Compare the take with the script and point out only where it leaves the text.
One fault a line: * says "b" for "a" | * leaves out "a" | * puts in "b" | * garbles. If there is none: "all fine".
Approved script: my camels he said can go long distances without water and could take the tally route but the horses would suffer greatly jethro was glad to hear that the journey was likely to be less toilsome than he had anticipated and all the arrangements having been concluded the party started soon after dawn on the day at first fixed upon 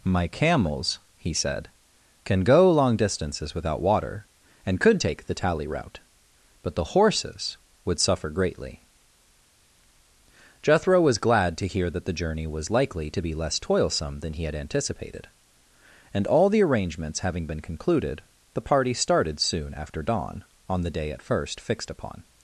all fine